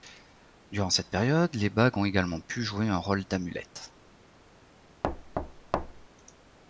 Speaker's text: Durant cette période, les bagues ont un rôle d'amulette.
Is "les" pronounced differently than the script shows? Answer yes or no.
no